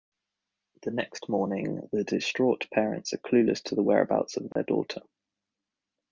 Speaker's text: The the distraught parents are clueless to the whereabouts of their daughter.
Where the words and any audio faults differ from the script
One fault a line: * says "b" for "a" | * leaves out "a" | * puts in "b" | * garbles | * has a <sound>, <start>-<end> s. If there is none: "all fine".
* puts in "next morning"
* has a dropout, 4.5-4.6 s